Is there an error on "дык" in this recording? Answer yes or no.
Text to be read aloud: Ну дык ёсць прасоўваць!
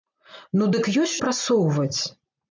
no